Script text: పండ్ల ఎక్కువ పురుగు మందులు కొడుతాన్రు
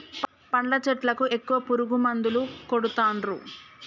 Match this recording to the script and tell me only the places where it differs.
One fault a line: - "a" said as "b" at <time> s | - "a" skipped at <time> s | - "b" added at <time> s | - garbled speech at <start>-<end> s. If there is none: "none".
- "చెట్లకు" added at 0.9 s